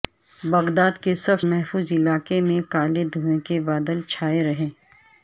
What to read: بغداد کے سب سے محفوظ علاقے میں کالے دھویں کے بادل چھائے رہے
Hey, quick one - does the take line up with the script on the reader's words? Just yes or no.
no